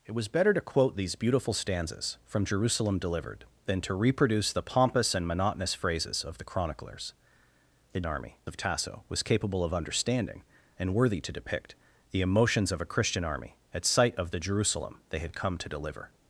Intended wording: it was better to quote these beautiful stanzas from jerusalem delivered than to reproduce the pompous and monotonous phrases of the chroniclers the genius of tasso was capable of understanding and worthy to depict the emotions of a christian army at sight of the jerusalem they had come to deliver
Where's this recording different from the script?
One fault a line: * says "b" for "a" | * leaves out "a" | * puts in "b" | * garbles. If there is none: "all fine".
* says "army" for "genius"